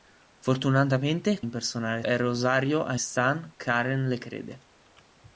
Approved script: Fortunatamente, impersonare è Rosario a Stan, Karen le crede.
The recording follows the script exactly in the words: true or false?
true